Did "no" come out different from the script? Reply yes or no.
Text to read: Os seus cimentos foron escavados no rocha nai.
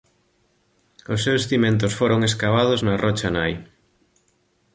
yes